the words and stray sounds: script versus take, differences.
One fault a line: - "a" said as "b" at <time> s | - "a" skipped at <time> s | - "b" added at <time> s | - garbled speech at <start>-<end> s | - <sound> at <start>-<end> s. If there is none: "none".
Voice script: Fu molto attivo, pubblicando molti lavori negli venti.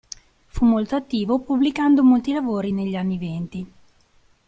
- "anni" added at 3.0 s